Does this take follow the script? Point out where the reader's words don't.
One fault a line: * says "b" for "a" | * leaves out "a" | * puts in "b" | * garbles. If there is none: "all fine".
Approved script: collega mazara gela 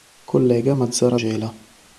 all fine